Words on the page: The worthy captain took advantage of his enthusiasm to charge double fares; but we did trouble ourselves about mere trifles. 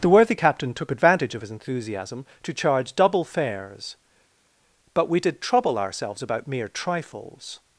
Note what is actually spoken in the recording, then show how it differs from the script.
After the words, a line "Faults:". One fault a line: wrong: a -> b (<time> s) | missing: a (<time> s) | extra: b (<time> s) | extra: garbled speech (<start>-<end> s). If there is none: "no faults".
The worthy captain took advantage of his enthusiasm to charge double fares; but we did trouble ourselves about mere trifles.
Faults:
no faults